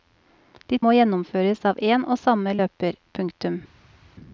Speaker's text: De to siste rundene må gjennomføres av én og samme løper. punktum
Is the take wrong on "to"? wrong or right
wrong